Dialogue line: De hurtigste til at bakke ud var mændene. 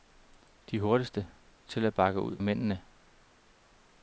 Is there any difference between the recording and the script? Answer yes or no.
yes